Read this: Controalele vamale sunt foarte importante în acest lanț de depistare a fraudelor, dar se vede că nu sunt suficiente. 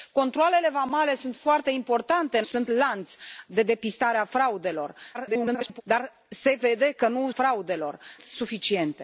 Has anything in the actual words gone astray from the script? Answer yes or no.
yes